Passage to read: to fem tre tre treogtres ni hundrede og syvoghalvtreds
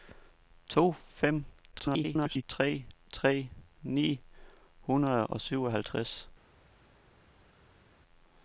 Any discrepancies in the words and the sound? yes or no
yes